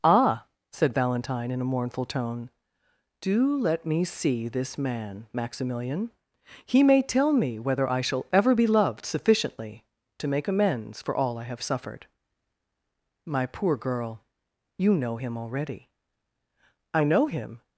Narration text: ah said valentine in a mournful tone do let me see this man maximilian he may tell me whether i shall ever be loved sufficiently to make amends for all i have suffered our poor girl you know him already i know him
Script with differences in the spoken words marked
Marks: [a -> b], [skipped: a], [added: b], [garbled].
ah said valentine in a mournful tone do let me see this man maximilian he may tell me whether i shall ever be loved sufficiently to make amends for all i have suffered [our -> my] poor girl you know him already i know him